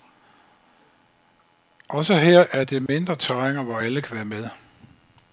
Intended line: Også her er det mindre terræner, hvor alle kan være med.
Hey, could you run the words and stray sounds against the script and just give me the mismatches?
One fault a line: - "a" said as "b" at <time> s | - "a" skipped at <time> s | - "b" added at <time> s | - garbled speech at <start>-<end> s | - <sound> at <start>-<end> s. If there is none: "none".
- dropout at 2.9-2.9 s